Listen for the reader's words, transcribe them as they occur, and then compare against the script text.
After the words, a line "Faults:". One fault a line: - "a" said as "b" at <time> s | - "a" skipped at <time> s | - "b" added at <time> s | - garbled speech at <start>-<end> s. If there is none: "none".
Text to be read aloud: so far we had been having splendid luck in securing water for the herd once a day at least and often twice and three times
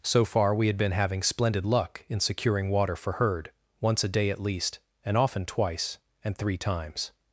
so far we had been having splendid luck in securing water for herd once a day at least and often twice and three times
Faults:
- "the" skipped at 3.1 s